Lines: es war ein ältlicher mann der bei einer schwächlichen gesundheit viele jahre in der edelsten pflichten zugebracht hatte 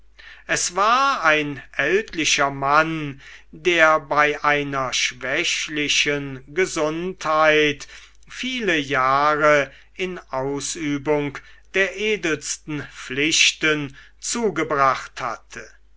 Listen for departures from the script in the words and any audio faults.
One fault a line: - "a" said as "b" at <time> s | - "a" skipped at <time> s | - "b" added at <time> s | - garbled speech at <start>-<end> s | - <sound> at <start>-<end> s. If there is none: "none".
- "ausübung" added at 10.3 s